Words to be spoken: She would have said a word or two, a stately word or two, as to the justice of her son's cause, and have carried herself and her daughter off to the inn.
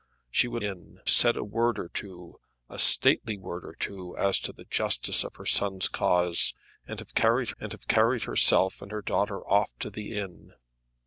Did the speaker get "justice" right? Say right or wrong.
right